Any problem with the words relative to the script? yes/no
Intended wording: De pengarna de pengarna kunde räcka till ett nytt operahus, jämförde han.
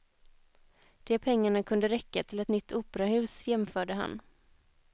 yes